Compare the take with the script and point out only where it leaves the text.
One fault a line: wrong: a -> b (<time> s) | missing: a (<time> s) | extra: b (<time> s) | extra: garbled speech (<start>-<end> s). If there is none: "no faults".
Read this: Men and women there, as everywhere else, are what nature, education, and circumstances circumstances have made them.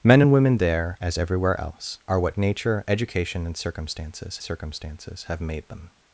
no faults